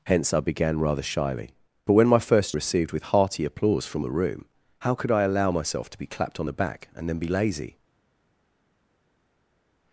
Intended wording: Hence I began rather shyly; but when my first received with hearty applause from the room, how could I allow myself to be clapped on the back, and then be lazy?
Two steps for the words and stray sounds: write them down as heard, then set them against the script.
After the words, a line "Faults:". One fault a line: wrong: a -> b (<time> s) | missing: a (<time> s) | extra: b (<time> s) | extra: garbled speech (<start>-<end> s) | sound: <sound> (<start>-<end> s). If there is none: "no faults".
Hence I began rather shyly; but when my first received with hearty applause from the room, how could I allow myself to be clapped on the back, and then be lazy?
Faults:
no faults